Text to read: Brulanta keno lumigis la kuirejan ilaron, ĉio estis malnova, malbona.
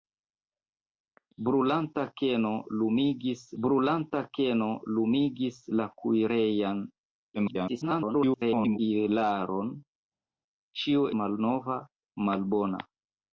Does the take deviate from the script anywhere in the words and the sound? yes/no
yes